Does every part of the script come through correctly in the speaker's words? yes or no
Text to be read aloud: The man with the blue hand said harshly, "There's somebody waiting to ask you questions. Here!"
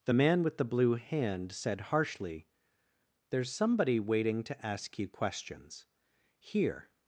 yes